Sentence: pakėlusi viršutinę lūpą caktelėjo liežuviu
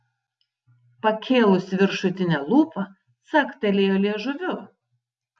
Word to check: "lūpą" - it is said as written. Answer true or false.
true